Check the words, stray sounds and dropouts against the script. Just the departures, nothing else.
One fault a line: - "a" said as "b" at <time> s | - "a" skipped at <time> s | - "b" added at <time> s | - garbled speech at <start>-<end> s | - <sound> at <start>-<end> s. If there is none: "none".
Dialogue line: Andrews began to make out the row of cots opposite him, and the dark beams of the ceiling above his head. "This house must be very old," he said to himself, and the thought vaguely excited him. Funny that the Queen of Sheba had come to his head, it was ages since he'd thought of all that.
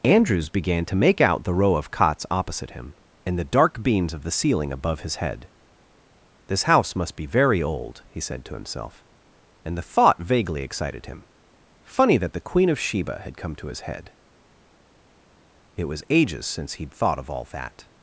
none